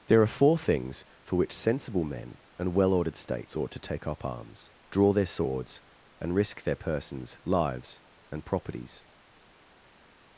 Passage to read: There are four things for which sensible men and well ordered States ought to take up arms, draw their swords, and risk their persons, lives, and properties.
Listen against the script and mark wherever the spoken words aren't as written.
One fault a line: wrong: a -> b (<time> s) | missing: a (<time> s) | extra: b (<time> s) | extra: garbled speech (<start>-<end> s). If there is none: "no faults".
no faults